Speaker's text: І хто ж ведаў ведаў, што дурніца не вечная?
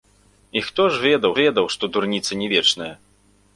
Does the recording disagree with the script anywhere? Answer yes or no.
no